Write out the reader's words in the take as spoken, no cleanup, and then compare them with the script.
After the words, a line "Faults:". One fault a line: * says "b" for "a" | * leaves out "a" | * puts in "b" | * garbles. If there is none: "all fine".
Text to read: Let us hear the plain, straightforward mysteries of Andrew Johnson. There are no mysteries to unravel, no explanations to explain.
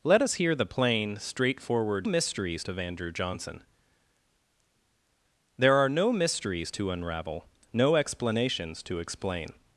Let us hear the plain, straightforward mysteries of Andrew Johnson. There are no mysteries to unravel, no explanations to explain.
Faults:
all fine